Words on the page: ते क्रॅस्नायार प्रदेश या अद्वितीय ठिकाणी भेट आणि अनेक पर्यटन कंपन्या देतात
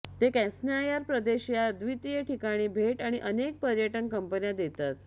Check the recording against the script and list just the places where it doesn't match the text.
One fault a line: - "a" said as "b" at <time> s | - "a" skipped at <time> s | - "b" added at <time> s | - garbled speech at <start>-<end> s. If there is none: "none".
none